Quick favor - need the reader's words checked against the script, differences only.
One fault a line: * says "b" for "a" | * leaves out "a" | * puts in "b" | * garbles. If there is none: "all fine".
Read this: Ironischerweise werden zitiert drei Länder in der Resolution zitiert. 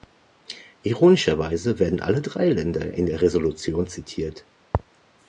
* says "alle" for "zitiert"